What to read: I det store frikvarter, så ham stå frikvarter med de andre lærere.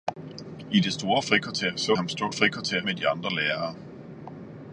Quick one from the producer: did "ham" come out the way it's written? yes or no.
yes